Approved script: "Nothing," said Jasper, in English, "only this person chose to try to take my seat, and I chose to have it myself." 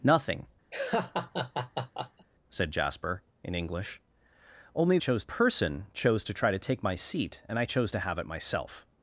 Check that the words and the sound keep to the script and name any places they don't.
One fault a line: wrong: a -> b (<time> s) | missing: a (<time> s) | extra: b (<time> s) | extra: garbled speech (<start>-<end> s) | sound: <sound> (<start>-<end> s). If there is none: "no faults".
sound: laugh (0.7-2.3 s)
wrong: this -> chose (5.0 s)